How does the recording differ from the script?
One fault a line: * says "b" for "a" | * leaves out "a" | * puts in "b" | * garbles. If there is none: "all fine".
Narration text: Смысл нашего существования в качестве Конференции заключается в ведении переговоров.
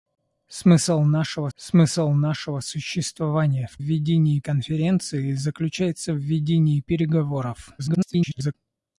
* puts in "смысл нашего"
* says "ведении" for "качестве"
* garbles